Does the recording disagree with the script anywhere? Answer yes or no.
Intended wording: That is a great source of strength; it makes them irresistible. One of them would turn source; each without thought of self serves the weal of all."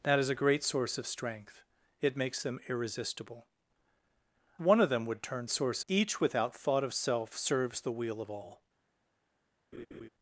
no